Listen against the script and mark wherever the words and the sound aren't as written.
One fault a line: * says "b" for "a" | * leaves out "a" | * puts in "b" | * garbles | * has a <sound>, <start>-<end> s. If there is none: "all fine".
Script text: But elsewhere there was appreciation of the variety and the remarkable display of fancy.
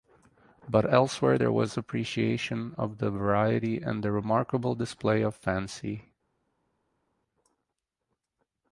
all fine